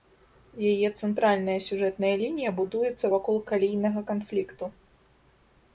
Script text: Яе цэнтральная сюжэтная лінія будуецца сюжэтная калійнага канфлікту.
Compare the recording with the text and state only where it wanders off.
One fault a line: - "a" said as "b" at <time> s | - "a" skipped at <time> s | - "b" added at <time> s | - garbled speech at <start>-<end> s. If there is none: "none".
- "сюжэтная" said as "вакол" at 3.2 s